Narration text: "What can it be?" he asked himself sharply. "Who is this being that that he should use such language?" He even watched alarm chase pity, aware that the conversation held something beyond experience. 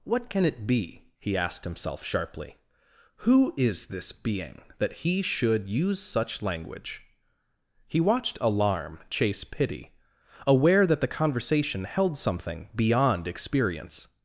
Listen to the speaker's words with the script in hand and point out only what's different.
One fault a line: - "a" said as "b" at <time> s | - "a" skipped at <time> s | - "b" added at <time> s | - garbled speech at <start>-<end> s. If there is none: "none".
- "that" skipped at 5.0 s
- "even" skipped at 8.0 s